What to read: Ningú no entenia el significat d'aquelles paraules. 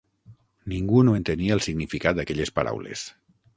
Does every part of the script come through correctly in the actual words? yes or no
yes